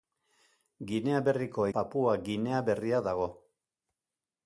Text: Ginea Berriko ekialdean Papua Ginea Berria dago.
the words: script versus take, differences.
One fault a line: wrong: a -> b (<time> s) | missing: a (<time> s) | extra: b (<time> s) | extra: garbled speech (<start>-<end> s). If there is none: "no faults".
missing: ekialdean (1.7 s)